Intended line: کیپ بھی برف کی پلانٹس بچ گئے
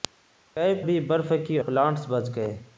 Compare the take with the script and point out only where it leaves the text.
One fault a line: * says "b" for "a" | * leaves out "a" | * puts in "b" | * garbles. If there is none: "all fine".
all fine